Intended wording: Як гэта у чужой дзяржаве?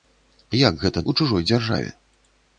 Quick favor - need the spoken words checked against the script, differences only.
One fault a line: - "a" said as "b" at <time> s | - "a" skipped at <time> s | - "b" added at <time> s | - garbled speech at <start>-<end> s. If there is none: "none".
none